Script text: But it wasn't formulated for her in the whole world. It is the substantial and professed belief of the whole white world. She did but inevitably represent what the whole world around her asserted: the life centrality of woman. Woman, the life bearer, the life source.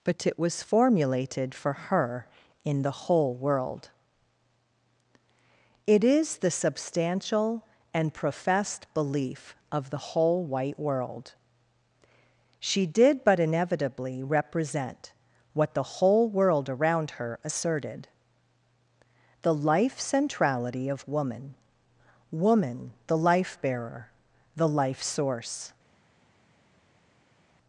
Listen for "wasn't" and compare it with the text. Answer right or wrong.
wrong